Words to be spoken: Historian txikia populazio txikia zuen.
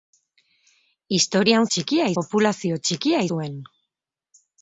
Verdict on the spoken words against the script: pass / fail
pass